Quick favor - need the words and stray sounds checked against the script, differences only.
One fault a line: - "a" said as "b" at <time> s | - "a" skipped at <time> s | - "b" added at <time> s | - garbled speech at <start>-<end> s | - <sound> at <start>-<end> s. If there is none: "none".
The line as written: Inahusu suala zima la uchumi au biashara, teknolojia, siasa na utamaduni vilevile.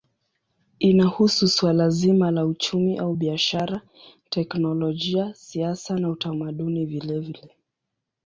none